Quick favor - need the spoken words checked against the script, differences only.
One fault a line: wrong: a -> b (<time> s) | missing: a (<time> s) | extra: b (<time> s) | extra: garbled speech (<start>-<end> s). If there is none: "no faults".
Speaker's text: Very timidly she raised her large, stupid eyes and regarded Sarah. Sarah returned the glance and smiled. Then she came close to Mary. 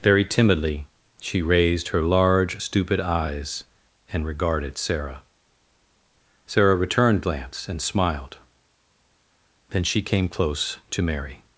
missing: the (7.2 s)